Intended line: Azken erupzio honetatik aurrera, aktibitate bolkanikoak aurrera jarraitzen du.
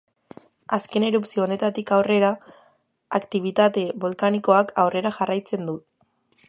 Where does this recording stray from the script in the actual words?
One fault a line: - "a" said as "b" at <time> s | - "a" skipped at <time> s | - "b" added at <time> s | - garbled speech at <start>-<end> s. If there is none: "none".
none